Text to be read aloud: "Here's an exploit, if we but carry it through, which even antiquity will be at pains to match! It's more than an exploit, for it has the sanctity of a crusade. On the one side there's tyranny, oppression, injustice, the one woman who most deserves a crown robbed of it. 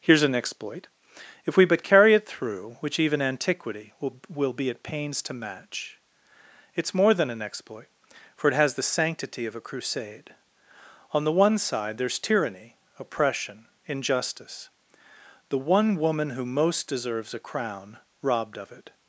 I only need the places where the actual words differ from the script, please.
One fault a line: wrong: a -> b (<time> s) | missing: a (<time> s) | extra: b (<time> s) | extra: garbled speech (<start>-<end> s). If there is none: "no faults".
extra: will (4.3 s)